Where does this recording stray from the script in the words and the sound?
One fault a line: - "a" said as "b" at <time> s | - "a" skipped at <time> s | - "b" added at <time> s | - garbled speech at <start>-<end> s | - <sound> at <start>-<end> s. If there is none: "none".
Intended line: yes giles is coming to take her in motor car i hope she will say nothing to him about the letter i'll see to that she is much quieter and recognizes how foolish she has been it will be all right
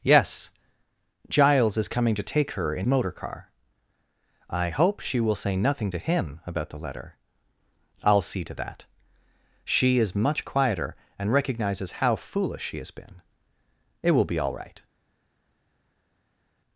none